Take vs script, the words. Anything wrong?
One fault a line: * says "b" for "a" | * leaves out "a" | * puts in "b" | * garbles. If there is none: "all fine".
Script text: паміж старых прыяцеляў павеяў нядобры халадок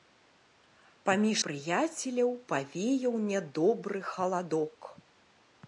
* leaves out "старых"